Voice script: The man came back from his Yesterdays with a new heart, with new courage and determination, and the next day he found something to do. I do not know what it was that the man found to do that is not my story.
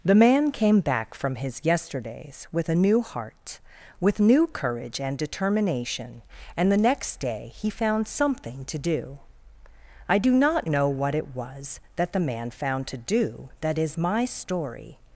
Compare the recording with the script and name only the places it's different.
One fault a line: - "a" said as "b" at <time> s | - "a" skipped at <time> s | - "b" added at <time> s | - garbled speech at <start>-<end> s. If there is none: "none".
- "not" skipped at 13.9 s